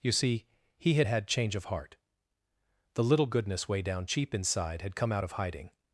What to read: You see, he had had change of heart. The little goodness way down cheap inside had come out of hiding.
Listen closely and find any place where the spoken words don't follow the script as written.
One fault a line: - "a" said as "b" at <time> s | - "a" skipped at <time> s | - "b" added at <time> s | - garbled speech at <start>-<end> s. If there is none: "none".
none